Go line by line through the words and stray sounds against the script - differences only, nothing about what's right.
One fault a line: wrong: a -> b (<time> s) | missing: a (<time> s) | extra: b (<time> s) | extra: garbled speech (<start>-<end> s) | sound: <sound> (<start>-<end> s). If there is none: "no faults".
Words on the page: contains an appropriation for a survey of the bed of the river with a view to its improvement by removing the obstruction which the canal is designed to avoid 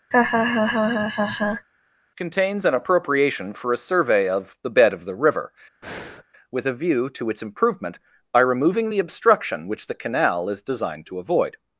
sound: laugh (0.1-1.7 s)
sound: breath (5.8-6.2 s)